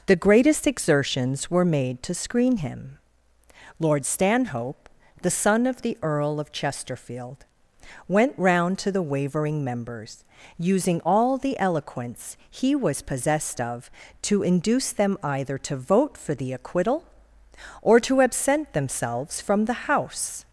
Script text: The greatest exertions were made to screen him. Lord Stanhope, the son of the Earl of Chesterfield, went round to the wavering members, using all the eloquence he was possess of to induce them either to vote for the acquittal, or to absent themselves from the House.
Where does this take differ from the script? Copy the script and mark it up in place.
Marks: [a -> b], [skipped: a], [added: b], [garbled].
The greatest exertions were made to screen him. Lord Stanhope, the son of the Earl of Chesterfield, went round to the wavering members, using all the eloquence he was [possess -> possessed] of to induce them either to vote for the acquittal, or to absent themselves from the House.